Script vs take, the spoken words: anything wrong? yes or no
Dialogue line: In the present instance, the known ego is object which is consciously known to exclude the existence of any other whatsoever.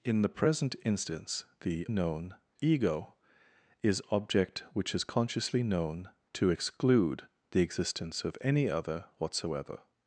no